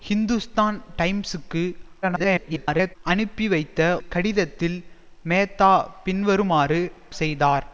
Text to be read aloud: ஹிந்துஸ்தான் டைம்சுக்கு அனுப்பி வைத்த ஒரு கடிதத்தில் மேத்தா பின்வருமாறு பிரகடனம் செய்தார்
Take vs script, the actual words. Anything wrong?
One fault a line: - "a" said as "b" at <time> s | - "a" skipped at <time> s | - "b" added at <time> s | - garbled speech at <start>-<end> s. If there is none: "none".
- garbled speech at 2.0-3.0 s
- "ஒரு" skipped at 3.8 s
- "பிரகடனம்" skipped at 6.8 s